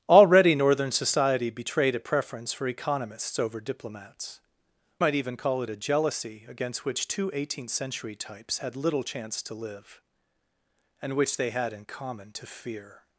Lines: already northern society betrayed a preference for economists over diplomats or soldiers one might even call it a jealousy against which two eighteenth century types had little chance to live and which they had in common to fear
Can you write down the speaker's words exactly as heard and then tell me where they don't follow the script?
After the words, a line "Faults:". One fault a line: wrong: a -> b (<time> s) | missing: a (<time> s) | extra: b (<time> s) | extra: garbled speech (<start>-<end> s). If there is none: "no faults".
already northern society betrayed a preference for economists over diplomats might even call it a jealousy against which two eighteenth century types had little chance to live and which they had in common to fear
Faults:
missing: or soldiers one (4.4 s)